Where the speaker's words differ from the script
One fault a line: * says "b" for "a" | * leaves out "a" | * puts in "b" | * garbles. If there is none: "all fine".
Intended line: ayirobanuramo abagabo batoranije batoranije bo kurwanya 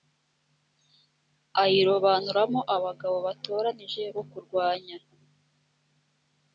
* leaves out "batoranije"